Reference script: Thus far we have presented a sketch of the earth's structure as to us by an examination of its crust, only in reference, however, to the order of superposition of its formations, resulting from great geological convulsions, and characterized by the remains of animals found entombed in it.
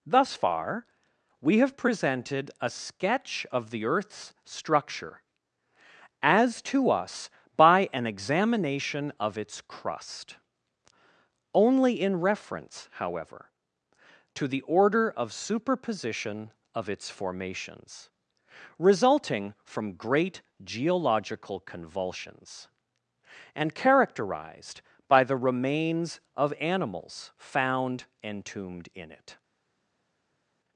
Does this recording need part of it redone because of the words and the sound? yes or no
no